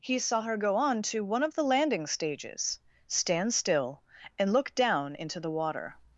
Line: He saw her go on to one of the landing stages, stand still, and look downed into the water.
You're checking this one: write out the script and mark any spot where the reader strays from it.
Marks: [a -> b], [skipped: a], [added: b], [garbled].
He saw her go on to one of the landing stages, stand still, and look [downed -> down] into the water.